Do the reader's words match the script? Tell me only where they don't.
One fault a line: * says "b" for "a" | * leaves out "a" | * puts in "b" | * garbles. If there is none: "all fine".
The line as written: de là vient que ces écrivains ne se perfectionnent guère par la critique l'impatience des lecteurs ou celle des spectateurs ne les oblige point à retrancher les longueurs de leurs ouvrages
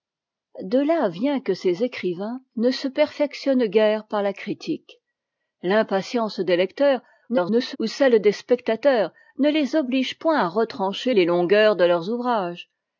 * garbles